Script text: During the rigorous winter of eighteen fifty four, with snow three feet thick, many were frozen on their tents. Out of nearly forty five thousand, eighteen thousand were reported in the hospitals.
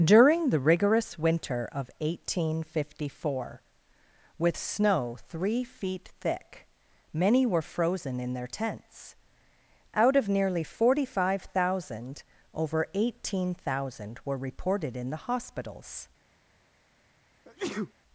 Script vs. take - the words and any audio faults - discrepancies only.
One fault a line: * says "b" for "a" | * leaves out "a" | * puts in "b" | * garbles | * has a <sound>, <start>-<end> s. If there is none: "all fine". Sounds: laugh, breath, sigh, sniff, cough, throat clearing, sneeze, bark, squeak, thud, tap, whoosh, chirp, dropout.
* says "in" for "on"
* puts in "over"
* has a sneeze, 17.4-17.9 s